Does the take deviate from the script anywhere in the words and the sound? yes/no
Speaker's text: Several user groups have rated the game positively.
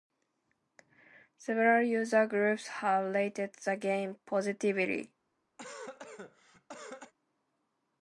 yes